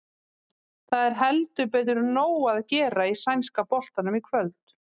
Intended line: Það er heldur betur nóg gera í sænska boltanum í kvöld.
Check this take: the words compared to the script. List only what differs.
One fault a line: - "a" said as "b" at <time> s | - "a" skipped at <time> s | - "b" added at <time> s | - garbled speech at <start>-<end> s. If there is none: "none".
- "að" added at 2.5 s